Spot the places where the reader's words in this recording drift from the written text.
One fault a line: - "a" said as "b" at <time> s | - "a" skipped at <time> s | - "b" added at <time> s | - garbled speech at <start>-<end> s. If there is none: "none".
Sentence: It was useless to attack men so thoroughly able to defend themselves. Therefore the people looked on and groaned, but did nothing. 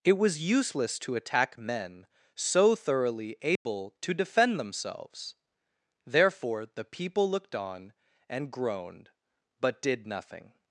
none